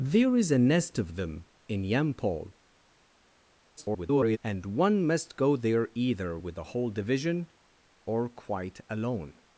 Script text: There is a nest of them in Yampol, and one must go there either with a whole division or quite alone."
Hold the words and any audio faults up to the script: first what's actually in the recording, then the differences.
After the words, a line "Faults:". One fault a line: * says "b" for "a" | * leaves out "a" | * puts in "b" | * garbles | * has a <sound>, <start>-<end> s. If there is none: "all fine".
There is a nest of them in Yampol, [garbled] and one must go there either with a whole division or quite alone."
Faults:
* garbles